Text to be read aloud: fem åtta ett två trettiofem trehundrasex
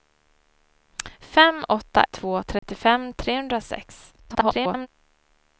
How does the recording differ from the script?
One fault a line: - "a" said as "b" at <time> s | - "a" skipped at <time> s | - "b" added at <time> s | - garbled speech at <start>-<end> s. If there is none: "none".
- "ett" skipped at 2.0 s
- garbled speech at 4.2-4.9 s